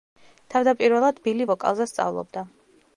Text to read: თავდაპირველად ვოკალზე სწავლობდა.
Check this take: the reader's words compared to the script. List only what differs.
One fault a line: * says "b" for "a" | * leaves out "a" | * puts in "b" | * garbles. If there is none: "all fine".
* puts in "ბილი"